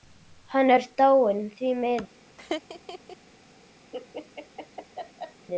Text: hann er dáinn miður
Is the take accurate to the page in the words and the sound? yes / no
no